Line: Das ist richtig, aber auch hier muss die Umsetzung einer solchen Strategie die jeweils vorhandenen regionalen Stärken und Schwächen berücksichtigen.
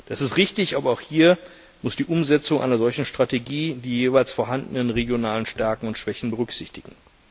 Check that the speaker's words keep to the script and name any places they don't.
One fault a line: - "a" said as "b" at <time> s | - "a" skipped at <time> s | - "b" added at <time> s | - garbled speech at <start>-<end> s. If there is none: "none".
none